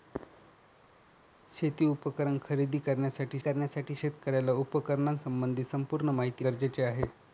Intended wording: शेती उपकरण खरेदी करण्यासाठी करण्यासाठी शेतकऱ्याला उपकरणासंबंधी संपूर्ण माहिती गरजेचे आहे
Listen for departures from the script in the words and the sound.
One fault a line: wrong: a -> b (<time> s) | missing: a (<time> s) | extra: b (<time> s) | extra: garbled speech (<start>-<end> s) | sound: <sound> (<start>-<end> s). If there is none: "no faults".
no faults